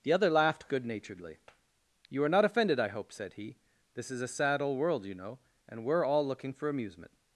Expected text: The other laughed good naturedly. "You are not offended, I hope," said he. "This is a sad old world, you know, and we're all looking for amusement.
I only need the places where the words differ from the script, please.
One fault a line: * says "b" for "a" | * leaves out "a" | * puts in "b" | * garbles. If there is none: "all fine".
all fine